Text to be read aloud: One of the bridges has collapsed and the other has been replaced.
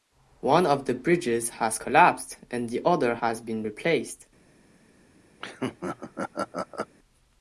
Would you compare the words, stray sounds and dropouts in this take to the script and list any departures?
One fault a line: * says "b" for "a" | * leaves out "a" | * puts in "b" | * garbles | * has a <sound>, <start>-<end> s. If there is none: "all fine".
* has a laugh, 5.4-6.9 s